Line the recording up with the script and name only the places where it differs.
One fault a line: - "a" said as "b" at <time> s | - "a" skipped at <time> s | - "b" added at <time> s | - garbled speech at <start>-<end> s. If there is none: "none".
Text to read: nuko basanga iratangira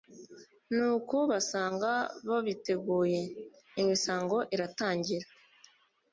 - "babiteguye imisango" added at 2.3 s